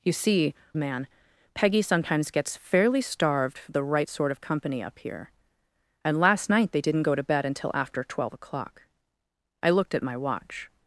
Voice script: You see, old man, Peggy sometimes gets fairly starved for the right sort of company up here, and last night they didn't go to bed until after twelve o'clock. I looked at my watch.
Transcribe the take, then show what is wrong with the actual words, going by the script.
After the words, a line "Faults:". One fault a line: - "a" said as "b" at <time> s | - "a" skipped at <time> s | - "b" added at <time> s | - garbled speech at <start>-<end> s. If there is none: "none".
You see, man, Peggy sometimes gets fairly starved for the right sort of company up here, and last night they didn't go to bed until after twelve o'clock. I looked at my watch.
Faults:
- "old" skipped at 0.5 s